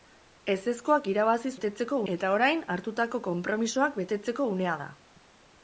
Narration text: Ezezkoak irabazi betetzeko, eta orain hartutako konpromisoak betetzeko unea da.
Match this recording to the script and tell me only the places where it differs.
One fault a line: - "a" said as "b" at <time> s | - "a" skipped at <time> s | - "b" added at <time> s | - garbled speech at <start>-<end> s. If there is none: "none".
none